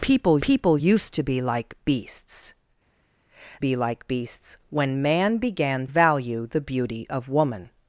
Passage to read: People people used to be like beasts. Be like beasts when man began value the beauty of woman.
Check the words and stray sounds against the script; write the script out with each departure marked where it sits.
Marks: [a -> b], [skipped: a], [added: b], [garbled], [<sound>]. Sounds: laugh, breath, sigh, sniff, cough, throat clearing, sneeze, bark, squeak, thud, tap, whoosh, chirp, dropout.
People people used to be like beasts. Be like beasts when man began value the beauty of woman.